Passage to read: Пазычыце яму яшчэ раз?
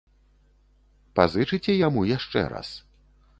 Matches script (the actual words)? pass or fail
pass